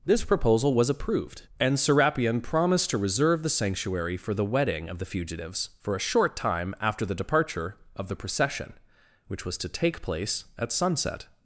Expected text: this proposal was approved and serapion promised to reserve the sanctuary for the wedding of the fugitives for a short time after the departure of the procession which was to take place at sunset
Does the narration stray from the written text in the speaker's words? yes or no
no